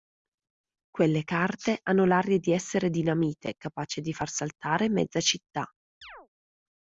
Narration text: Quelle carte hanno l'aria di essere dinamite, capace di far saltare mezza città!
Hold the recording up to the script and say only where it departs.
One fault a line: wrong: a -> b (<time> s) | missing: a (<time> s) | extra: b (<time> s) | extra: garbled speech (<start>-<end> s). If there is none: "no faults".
no faults